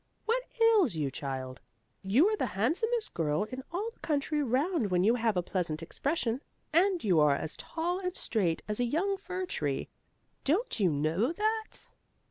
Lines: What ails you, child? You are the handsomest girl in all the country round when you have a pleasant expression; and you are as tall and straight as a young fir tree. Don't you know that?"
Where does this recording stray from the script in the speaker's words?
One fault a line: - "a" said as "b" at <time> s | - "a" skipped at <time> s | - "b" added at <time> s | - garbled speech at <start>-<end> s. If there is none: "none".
none